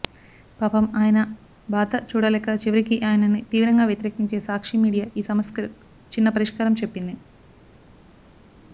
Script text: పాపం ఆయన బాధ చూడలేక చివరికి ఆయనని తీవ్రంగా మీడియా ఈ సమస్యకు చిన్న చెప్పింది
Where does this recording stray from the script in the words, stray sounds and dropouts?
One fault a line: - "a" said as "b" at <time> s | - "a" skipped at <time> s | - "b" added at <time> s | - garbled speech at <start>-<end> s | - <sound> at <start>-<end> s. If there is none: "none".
- "వ్యతిరేకించే సాక్షి" added at 3.9 s
- "పరిష్కారం" added at 6.3 s